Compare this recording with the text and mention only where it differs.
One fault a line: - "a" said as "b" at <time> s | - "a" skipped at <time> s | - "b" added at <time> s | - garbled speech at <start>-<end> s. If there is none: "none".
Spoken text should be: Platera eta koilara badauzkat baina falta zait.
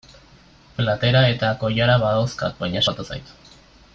none